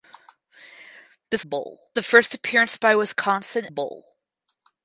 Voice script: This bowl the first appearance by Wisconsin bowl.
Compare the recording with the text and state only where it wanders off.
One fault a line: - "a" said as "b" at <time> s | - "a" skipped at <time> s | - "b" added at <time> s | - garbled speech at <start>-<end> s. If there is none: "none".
none